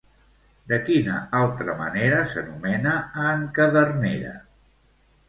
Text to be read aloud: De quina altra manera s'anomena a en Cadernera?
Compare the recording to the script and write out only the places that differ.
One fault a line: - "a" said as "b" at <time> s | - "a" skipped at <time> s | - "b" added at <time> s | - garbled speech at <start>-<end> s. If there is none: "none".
none